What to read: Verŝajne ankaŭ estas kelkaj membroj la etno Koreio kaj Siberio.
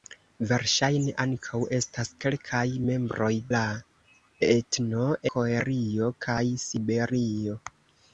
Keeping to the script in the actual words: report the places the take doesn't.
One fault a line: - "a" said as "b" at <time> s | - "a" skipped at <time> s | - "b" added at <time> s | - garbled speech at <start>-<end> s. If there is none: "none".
none